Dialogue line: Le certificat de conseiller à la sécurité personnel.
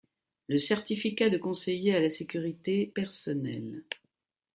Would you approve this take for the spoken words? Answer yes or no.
yes